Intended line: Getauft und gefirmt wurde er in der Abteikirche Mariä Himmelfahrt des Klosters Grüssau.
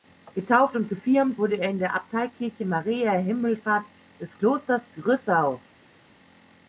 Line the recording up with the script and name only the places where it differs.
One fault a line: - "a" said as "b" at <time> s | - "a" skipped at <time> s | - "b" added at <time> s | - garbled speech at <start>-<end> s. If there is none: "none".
none